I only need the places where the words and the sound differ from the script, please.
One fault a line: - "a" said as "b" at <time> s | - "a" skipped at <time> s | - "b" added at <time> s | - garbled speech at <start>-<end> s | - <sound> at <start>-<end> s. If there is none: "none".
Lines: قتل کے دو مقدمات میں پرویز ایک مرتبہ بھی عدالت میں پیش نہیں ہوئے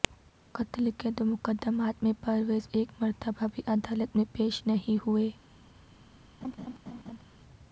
- laugh at 6.4-7.2 s